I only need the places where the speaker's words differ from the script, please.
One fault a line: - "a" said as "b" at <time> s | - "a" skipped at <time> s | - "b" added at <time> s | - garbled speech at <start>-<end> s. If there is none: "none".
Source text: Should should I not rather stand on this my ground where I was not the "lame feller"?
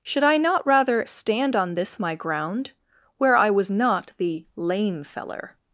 - "should" skipped at 0.2 s